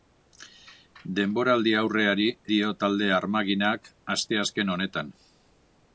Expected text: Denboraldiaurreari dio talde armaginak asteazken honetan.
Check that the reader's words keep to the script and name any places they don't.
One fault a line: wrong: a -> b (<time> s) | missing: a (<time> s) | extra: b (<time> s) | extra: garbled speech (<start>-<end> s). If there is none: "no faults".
no faults